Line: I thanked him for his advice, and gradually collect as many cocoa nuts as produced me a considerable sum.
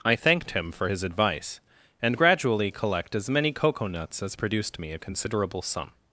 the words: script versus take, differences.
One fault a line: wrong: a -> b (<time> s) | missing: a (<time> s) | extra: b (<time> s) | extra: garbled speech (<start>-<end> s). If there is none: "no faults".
no faults